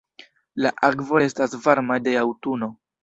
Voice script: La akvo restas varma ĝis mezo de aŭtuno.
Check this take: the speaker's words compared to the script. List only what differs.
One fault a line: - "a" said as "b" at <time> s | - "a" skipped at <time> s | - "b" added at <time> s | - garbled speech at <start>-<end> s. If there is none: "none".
- "ĝis mezo" skipped at 2.0 s